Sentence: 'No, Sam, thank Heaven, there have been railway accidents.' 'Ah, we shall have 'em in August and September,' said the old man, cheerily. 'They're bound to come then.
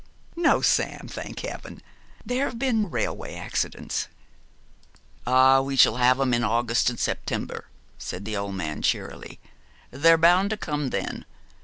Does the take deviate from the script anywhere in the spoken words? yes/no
no